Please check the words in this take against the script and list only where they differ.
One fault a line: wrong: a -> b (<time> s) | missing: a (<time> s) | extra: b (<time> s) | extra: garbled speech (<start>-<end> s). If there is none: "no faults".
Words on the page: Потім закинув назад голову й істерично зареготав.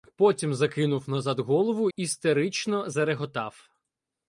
missing: й (1.9 s)